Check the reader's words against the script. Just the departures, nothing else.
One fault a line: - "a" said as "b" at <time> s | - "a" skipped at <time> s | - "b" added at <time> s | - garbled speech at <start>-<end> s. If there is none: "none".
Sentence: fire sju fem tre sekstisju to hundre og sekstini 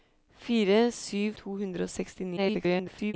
- "fem tre sekstisju" skipped at 1.3 s
- garbled speech at 2.4-3.1 s